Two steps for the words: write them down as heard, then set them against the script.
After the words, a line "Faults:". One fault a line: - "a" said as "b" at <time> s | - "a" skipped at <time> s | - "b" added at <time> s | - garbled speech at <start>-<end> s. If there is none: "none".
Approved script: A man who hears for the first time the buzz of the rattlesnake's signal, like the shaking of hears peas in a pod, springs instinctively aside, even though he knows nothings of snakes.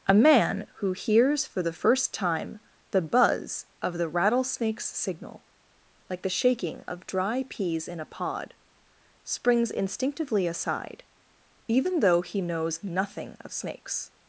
A man who hears for the first time the buzz of the rattlesnake's signal, like the shaking of dry peas in a pod, springs instinctively aside, even though he knows nothing of snakes.
Faults:
- "hears" said as "dry" at 7.1 s
- "nothings" said as "nothing" at 12.8 s